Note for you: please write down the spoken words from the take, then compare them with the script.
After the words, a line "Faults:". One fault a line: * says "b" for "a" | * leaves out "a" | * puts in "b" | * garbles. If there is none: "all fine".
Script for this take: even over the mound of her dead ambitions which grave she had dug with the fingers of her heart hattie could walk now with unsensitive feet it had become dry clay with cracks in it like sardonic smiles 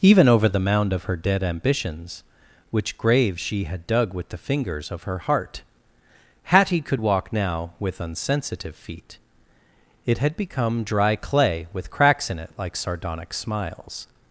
even over the mound of her dead ambitions which grave she had dug with the fingers of her heart hattie could walk now with unsensitive feet it had become dry clay with cracks in it like sardonic smiles
Faults:
all fine